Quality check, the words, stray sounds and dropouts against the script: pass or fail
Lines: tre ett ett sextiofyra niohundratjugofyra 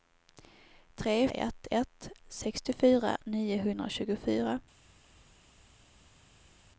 pass